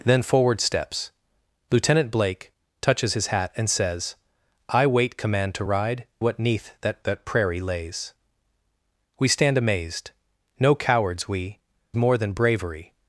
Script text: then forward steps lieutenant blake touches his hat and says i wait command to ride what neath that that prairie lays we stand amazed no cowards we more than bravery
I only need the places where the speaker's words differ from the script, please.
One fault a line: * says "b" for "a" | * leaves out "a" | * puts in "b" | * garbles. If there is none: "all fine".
all fine